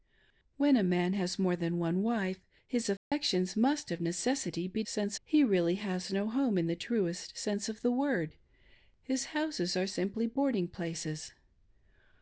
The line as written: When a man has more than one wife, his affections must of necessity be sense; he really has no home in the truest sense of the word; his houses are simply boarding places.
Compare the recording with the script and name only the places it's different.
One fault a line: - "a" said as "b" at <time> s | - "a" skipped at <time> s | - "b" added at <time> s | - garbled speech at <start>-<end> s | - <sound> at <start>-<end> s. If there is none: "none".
- dropout at 3.0-3.1 s